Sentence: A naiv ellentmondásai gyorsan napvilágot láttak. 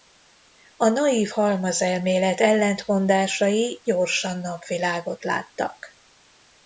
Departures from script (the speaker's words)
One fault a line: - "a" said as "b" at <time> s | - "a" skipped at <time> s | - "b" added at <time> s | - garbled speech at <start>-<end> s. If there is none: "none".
- "halmazelmélet" added at 1.3 s